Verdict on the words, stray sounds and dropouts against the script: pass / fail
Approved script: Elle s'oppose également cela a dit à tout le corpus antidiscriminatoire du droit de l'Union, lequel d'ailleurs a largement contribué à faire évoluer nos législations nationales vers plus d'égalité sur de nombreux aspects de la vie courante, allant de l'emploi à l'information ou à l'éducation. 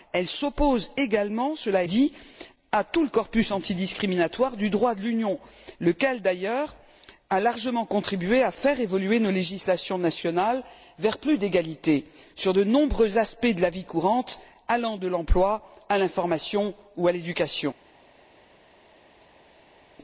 pass